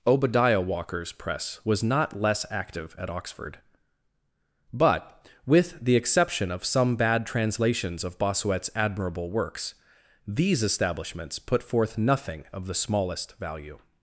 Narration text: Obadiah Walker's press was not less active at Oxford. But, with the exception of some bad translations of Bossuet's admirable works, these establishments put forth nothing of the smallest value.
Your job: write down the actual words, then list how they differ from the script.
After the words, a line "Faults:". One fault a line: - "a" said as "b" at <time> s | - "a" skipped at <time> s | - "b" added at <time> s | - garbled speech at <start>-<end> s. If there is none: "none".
Obadiah Walker's press was not less active at Oxford. But, with the exception of some bad translations of Bossuet's admirable works, these establishments put forth nothing of the smallest value.
Faults:
none